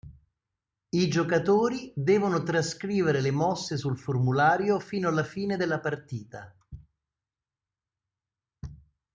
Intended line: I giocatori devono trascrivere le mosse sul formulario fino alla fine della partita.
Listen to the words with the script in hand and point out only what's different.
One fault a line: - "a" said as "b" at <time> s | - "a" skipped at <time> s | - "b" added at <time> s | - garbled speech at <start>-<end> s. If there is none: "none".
none